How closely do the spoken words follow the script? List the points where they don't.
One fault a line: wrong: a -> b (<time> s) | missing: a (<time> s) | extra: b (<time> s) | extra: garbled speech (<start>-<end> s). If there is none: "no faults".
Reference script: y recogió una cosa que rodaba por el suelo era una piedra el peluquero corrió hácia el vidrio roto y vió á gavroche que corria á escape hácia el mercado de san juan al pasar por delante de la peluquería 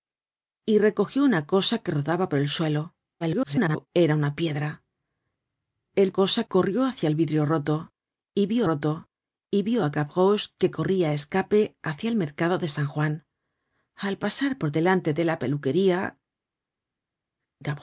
extra: garbled speech (3.2-3.9 s)
wrong: peluquero -> cosa (6.1 s)
extra: roto y vió (8.6 s)